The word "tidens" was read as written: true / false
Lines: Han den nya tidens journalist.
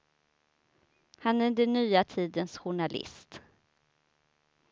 true